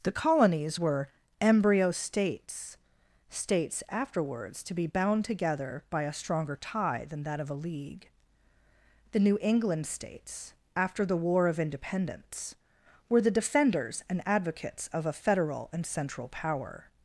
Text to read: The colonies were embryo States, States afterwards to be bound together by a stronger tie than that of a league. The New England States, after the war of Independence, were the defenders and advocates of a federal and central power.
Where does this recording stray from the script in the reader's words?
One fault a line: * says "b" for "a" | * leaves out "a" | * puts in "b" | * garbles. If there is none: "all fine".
all fine